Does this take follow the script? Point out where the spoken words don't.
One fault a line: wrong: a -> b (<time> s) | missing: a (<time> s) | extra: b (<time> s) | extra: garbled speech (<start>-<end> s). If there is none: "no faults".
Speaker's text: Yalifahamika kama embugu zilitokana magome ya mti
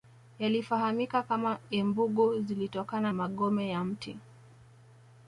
no faults